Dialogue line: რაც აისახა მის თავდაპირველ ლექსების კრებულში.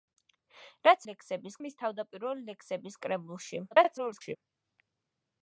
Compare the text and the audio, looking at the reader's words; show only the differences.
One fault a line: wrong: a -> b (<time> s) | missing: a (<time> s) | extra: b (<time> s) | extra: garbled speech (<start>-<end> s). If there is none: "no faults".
wrong: აისახა -> ლექსების (1.1 s)
extra: garbled speech (3.7-4.4 s)